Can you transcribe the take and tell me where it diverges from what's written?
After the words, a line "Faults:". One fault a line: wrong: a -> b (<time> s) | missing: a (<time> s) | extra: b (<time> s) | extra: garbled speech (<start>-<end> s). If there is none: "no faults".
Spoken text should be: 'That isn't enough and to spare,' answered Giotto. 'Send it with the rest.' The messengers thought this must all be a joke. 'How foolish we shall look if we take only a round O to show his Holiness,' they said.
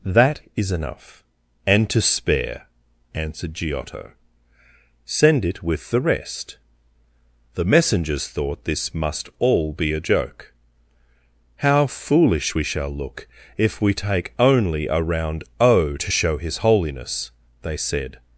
'That is enough and to spare,' answered Giotto. 'Send it with the rest.' The messengers thought this must all be a joke. 'How foolish we shall look if we take only a round O to show his Holiness,' they said.
Faults:
wrong: isn't -> is (0.6 s)